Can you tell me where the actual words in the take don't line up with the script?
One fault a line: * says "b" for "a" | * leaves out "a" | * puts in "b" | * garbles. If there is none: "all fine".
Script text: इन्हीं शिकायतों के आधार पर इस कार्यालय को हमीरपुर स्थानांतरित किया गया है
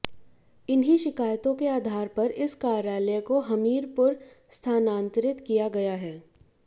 all fine